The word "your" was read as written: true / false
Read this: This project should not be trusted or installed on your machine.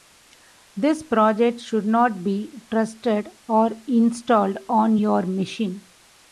true